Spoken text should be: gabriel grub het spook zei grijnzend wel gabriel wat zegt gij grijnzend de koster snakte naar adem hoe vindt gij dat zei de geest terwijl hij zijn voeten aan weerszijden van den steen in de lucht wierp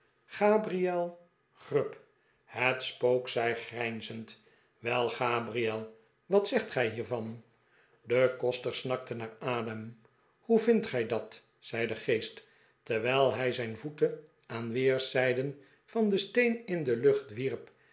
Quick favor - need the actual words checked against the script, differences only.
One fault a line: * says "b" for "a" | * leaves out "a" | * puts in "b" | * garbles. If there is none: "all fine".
* says "hiervan" for "grijnzend"